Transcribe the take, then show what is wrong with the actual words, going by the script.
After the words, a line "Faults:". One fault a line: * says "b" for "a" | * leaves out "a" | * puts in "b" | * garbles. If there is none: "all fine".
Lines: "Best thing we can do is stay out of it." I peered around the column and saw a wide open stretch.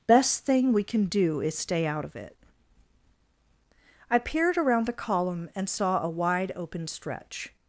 "Best thing we can do is stay out of it." I peered around the column and saw a wide open stretch.
Faults:
all fine